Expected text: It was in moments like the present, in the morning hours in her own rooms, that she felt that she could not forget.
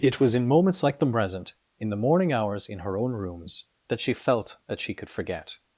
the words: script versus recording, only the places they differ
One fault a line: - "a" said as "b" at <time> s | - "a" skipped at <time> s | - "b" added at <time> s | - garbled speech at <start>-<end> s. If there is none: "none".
- "not" skipped at 5.1 s